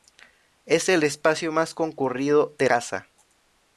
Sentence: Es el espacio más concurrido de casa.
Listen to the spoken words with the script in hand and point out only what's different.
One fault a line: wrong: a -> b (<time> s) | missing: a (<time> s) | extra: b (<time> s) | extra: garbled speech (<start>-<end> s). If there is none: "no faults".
no faults